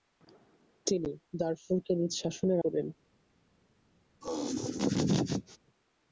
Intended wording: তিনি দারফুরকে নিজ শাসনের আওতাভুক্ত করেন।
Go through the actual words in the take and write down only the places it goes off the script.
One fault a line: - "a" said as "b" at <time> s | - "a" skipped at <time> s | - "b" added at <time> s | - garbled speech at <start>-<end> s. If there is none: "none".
- "আওতাভুক্ত" skipped at 2.6 s